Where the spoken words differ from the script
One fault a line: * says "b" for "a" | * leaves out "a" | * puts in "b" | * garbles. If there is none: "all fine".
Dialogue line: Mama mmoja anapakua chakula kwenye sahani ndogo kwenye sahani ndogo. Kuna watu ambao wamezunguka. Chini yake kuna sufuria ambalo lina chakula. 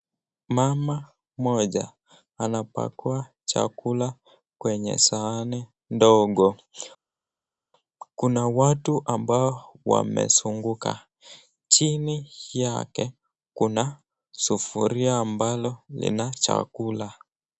* leaves out "kwenye sahani ndogo"